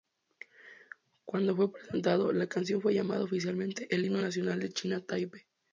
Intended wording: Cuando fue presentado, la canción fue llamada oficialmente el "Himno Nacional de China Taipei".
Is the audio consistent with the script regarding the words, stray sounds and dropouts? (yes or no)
yes